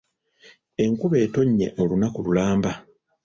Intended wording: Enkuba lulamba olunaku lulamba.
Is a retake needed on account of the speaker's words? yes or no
yes